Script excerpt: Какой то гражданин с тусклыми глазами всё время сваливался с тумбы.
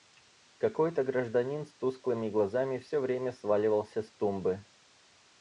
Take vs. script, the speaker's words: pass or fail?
pass